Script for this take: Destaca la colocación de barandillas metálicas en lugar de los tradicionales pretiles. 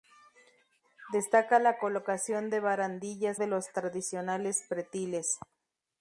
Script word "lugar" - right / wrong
wrong